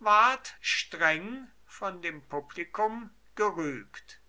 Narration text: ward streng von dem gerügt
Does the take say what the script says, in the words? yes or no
no